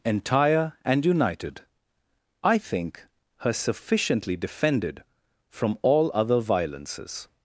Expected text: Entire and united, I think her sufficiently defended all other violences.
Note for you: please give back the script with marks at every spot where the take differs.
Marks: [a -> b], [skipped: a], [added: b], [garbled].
Entire and united, I think her sufficiently defended [added: from] all other violences.